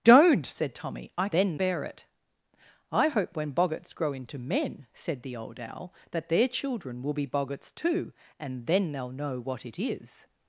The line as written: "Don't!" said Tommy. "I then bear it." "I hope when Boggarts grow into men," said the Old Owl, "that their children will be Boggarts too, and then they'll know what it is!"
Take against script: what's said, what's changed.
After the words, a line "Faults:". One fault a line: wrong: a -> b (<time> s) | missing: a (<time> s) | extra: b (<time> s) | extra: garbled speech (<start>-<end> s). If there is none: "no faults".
"Don't!" said Tommy. "I then bear it." "I hope when Boggarts grow into men," said the Old Owl, "that their children will be Boggarts too, and then they'll know what it is!"
Faults:
no faults